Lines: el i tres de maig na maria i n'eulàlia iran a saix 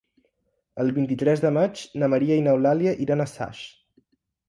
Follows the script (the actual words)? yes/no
no